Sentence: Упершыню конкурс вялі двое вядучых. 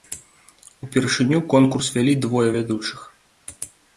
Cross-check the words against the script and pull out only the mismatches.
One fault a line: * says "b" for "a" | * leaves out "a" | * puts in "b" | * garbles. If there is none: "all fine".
all fine